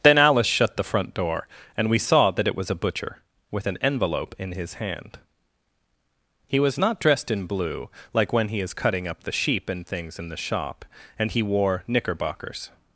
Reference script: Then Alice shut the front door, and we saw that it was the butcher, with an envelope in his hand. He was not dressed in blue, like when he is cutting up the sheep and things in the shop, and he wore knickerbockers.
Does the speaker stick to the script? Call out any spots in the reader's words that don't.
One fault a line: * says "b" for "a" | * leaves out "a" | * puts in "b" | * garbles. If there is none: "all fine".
* says "a" for "the"